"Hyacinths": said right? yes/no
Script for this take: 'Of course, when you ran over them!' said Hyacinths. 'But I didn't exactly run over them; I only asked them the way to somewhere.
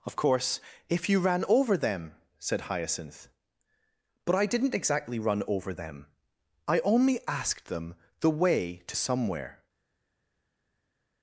no